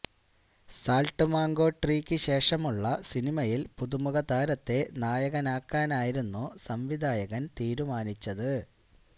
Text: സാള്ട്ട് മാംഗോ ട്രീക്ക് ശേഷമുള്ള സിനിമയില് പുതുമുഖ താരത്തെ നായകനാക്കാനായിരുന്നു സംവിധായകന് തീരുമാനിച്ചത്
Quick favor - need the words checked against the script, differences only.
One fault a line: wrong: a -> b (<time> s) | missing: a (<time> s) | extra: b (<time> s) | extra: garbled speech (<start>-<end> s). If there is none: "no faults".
no faults